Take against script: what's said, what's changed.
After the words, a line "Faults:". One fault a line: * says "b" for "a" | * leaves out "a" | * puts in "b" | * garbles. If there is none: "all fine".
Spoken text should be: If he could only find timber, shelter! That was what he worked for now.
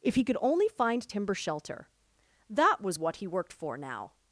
If he could only find timber, shelter! That was what he worked for now.
Faults:
all fine